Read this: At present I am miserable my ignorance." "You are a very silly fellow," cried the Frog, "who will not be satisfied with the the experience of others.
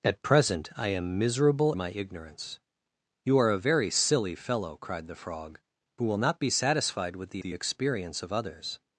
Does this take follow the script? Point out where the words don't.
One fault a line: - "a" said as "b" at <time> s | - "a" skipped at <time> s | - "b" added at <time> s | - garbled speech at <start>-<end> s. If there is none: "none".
none